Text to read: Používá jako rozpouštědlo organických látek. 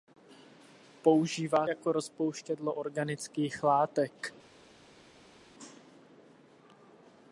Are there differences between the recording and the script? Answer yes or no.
no